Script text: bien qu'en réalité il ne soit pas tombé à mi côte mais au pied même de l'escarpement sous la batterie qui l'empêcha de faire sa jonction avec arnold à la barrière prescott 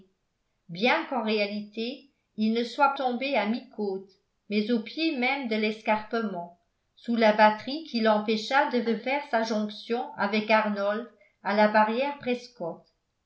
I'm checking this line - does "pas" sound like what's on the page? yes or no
no